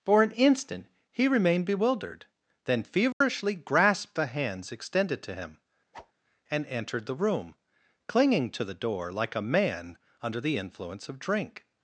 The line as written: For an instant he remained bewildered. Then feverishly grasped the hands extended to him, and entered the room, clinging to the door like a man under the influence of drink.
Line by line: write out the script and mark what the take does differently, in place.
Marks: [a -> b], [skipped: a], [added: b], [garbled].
For an instant he remained bewildered. Then feverishly grasped the hands extended to him, and entered the room, clinging to the door like a man under the influence of drink.